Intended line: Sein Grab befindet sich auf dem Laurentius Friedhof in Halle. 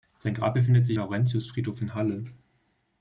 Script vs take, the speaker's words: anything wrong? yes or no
yes